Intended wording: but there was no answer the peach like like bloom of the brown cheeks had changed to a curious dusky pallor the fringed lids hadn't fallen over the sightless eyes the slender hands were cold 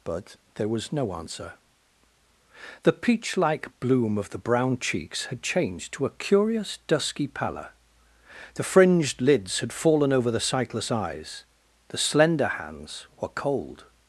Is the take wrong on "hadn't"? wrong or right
wrong